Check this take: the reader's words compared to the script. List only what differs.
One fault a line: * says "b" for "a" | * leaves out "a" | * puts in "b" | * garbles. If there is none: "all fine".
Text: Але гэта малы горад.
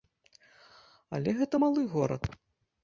all fine